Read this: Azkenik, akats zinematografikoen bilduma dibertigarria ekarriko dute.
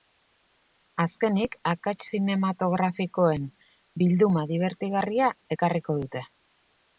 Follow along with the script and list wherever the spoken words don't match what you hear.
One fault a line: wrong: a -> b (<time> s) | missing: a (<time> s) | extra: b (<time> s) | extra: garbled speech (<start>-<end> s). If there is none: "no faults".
no faults